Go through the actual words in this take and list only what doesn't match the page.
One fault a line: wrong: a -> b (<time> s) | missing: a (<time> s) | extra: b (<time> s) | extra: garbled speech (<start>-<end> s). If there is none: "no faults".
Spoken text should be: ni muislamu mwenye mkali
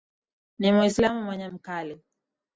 no faults